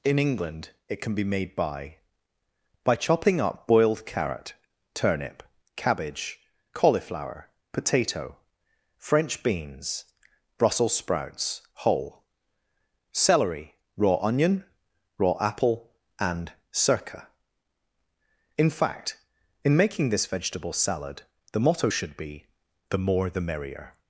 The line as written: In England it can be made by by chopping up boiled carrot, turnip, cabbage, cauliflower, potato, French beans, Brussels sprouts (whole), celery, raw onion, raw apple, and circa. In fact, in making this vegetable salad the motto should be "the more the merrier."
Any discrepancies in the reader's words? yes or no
no